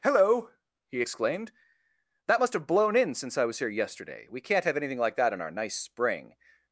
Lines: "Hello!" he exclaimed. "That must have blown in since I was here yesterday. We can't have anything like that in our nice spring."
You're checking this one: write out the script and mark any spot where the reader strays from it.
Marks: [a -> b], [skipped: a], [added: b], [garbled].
"Hello!" he exclaimed. "That must have blown in since I was here yesterday. We can't have anything like that in our nice spring."